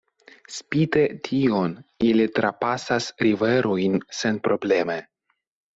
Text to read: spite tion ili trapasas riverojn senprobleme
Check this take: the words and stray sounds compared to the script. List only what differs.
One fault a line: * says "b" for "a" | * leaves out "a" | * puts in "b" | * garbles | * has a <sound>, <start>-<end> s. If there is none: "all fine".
all fine